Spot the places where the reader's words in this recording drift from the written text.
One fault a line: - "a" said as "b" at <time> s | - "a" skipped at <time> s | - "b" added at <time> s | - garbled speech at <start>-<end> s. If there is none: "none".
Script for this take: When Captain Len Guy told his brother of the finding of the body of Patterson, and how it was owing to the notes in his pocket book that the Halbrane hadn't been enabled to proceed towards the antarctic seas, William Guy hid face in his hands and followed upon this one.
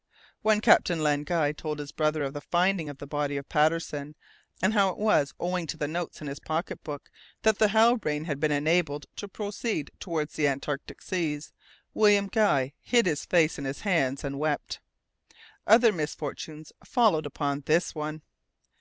- "hadn't" said as "had" at 8.3 s
- "his" added at 13.1 s
- "wept Other misfortunes" added at 14.4 s